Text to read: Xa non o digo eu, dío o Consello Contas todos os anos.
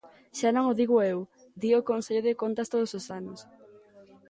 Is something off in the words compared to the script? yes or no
yes